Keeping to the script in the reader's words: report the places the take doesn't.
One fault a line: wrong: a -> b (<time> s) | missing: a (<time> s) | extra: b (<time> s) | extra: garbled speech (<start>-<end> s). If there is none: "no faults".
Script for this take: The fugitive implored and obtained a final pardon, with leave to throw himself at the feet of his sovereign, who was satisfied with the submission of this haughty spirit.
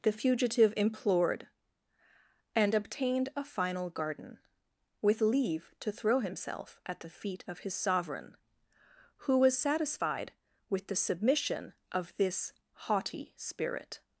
wrong: pardon -> garden (3.9 s)